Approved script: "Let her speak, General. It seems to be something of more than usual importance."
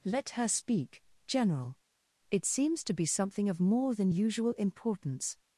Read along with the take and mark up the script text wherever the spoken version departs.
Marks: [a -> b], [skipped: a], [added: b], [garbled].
"Let her speak, General. It seems to be something of more than usual importance."